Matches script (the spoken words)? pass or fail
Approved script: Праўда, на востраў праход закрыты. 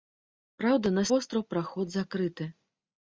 pass